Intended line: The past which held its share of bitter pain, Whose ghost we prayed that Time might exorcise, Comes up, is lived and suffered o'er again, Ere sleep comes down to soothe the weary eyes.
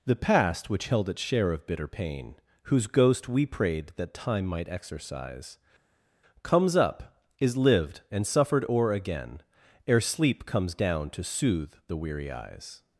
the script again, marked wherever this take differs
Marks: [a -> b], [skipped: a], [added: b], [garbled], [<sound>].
The past which held its share of bitter pain, Whose ghost we prayed that Time might exorcise, Comes up, is lived and suffered o'er again, Ere sleep comes down to soothe the weary eyes.